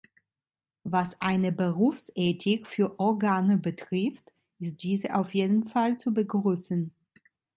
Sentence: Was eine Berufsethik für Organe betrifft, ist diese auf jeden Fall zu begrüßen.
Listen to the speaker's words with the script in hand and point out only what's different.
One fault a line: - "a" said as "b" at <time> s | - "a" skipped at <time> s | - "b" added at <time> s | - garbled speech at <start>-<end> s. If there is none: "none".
none